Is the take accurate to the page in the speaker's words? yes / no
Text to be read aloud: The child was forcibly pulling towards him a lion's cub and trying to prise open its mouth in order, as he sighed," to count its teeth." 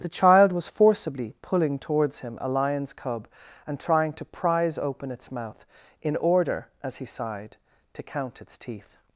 yes